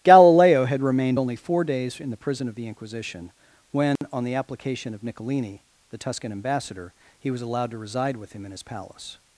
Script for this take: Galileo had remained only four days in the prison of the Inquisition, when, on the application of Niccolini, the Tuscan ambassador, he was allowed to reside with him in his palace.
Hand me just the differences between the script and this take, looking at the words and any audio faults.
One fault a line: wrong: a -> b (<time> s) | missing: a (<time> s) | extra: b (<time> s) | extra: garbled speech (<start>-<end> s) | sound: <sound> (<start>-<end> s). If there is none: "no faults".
sound: dropout (4.0-4.0 s)